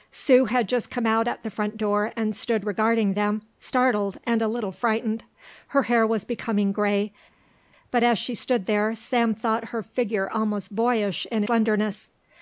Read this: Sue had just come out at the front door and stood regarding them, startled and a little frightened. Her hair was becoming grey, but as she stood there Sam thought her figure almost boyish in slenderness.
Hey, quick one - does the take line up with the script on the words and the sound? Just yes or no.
yes